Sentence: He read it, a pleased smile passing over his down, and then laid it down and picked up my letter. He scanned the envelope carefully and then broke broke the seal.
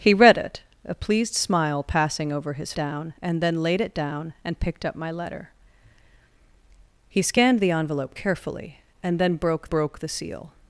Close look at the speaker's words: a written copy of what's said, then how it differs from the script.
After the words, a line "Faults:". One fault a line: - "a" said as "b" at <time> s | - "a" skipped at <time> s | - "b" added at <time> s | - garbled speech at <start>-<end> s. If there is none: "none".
He read it, a pleased smile passing over his down, and then laid it down and picked up my letter. He scanned the envelope carefully and then broke broke the seal.
Faults:
none